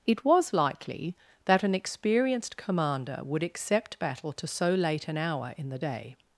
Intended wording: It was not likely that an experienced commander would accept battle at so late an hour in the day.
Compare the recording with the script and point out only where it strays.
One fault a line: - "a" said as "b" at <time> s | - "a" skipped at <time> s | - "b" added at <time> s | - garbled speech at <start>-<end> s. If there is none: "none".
- "not" skipped at 0.5 s
- "at" said as "to" at 4.3 s